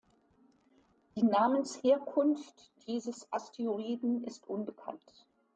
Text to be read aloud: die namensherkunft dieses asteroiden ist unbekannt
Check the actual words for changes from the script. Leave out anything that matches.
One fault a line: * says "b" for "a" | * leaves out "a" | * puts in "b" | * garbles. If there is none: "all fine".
all fine